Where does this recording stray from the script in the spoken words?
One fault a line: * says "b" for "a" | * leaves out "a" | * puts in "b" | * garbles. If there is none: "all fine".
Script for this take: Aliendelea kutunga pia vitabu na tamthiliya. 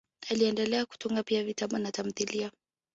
all fine